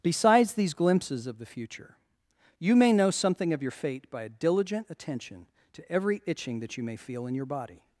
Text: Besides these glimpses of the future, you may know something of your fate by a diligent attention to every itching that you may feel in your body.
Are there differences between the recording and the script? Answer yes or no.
no